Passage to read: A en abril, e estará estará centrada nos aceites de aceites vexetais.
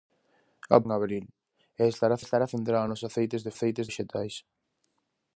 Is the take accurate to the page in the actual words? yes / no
yes